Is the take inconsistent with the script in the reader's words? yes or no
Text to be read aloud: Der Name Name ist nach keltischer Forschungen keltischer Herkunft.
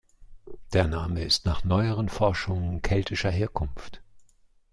yes